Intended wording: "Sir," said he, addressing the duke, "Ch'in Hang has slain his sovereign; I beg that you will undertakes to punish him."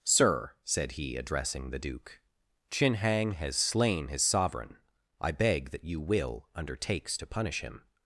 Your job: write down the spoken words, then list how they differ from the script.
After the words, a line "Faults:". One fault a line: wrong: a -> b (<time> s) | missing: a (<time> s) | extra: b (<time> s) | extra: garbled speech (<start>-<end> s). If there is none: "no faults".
"Sir," said he, addressing the duke, "Ch'in Hang has slain his sovereign; I beg that you will undertakes to punish him."
Faults:
no faults